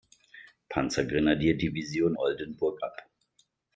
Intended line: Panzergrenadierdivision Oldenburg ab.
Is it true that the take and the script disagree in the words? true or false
false